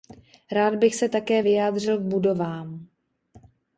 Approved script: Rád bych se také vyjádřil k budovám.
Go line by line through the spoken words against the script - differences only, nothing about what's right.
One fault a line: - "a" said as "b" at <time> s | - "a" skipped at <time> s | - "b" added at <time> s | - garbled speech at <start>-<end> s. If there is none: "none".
none